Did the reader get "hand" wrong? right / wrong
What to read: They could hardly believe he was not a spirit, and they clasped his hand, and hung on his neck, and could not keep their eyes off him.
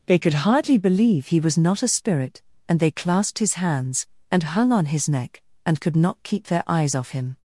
wrong